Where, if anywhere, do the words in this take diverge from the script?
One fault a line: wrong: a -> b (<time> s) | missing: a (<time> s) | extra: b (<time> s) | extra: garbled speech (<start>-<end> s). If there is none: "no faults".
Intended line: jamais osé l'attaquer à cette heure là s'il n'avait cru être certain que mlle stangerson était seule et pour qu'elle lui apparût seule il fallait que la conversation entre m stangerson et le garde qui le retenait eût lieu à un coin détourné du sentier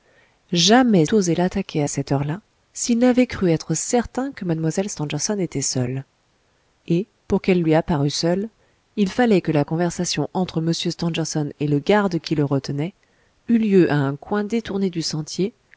no faults